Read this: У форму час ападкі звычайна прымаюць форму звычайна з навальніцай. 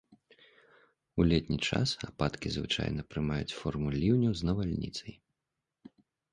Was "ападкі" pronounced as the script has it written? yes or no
yes